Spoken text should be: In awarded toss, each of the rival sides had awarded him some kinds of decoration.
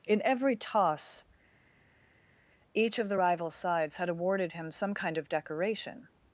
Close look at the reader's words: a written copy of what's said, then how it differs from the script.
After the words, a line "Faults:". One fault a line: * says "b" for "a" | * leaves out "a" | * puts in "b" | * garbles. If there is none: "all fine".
In every toss, each of the rival sides had awarded him some kind of decoration.
Faults:
* says "every" for "awarded"
* says "kind" for "kinds"